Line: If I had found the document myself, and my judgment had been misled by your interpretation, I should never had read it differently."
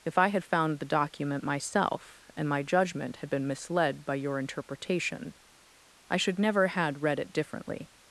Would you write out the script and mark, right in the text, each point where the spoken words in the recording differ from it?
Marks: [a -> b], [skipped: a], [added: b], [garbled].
If I had found the document myself, and my judgment had been misled by your interpretation, I should never had read it differently."